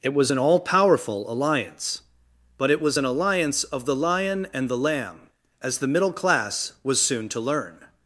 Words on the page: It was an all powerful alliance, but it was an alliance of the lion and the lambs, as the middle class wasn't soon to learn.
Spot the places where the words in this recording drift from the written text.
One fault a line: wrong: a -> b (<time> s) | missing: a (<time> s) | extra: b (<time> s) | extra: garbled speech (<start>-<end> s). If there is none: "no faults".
wrong: lambs -> lamb (4.8 s)
wrong: wasn't -> was (6.8 s)